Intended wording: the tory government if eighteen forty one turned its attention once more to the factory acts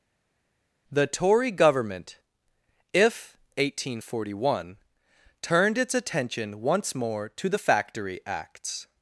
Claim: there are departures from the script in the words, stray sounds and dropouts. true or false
false